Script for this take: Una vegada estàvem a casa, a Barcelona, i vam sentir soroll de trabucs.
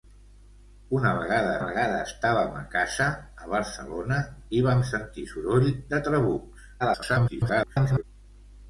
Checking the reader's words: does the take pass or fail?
fail